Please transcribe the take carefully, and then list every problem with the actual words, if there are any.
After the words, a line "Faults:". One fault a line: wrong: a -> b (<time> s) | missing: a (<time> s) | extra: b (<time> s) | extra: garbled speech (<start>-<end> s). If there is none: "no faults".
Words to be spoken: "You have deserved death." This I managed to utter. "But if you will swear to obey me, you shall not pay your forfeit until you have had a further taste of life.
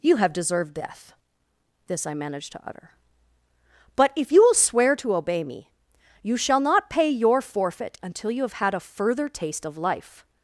"You have deserved death." This I managed to utter. "But if you will swear to obey me, you shall not pay your forfeit until you have had a further taste of life.
Faults:
no faults